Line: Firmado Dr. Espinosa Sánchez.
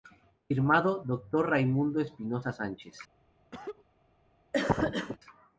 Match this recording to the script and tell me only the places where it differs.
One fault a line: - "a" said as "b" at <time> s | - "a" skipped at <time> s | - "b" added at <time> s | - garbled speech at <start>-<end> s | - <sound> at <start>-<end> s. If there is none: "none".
- "Raimundo" added at 1.5 s
- cough at 3.5-3.9 s
- cough at 4.5-5.2 s